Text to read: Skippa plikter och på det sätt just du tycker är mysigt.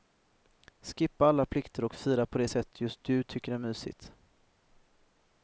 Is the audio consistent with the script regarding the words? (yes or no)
no